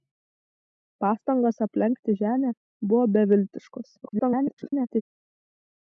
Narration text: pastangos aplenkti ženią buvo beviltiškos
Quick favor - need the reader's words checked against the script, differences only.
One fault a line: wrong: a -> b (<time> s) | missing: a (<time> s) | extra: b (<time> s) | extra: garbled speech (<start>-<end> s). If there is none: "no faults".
extra: garbled speech (4.0-5.0 s)